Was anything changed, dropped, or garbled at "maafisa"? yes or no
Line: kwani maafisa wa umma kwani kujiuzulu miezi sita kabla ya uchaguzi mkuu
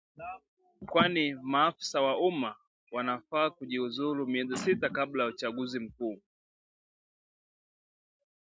no